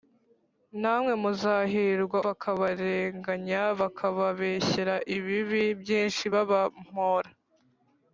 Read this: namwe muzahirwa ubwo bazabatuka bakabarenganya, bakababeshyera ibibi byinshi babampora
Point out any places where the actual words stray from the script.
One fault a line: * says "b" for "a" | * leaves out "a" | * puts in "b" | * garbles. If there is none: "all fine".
* leaves out "ubwo bazabatuka"